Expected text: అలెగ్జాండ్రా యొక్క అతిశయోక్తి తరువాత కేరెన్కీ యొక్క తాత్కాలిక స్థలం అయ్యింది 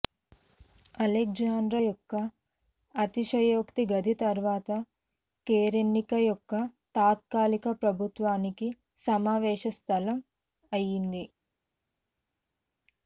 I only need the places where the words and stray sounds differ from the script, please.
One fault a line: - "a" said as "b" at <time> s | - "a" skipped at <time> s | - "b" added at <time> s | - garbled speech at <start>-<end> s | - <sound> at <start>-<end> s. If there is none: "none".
- "గది" added at 3.9 s
- "ప్రభుత్వానికి సమావేశ" added at 7.8 s